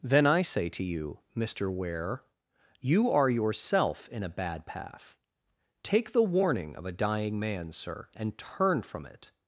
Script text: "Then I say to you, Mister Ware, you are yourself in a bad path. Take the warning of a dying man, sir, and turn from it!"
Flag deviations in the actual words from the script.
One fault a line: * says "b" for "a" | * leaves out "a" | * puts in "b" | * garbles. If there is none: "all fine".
all fine